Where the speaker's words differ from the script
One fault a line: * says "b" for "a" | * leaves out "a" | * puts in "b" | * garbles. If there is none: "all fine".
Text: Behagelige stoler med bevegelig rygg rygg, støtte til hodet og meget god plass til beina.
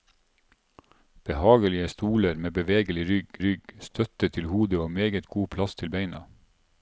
all fine